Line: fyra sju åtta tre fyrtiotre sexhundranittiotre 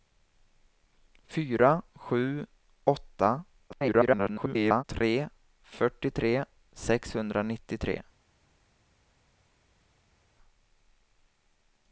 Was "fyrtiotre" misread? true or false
false